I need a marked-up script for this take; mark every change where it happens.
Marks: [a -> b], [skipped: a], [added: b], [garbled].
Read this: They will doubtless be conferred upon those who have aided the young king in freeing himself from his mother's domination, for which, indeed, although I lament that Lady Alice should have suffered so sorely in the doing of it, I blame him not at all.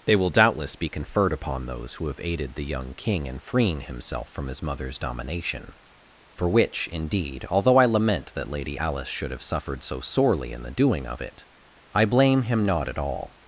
They will doubtless be conferred upon those who have aided the young king in freeing himself from his mother's domination, for which, indeed, although I lament that Lady Alice should have suffered so sorely in the doing of it, I blame him not at all.